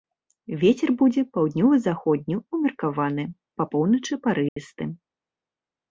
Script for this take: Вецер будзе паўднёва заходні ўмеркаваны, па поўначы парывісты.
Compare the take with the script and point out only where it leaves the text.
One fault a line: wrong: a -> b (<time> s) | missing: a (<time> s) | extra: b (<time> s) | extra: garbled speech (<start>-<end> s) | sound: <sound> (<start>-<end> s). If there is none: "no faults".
sound: dropout (4.5-4.6 s)